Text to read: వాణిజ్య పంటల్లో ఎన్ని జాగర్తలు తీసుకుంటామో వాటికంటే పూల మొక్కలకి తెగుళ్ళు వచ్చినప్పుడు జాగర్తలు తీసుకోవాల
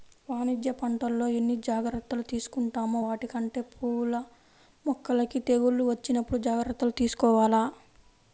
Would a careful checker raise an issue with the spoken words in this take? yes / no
no